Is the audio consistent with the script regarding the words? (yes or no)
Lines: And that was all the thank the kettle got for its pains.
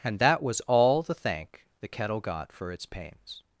yes